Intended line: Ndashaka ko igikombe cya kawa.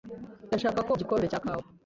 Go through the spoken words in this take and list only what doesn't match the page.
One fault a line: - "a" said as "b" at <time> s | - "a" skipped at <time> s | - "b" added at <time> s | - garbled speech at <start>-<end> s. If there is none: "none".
none